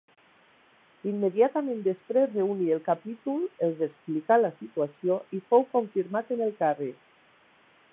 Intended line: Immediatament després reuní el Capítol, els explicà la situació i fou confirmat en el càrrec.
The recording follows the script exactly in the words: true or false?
true